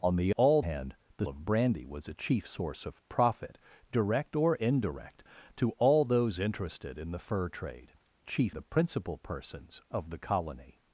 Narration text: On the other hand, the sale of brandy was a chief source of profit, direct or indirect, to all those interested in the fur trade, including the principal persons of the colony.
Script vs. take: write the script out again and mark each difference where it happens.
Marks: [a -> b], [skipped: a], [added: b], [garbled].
On the [other -> all] hand, the [skipped: sale] of brandy was a chief source of profit, direct or indirect, to all those interested in the fur trade, [including -> chief] the principal persons of the colony.